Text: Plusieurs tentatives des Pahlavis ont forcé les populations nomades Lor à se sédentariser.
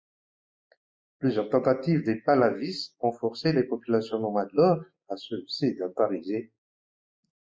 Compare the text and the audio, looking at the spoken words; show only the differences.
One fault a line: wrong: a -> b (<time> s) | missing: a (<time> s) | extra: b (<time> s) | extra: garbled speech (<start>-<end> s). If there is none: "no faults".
no faults